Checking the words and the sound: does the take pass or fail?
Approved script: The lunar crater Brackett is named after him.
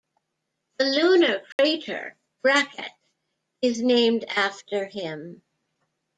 fail